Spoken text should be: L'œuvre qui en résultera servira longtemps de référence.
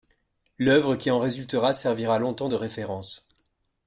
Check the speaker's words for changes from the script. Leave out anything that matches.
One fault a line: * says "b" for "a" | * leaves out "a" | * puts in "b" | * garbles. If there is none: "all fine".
all fine